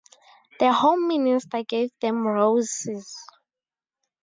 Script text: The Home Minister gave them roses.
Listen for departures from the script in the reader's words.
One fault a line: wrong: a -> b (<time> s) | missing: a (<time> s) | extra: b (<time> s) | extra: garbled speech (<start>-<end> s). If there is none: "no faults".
no faults